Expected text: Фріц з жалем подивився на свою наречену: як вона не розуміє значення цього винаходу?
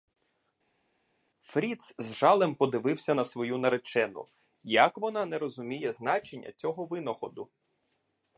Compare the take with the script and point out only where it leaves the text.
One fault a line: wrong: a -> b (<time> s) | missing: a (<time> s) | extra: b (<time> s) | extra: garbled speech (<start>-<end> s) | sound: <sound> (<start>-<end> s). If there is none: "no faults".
no faults